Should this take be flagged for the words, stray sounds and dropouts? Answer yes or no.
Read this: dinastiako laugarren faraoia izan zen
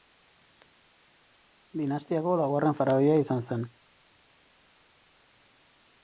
no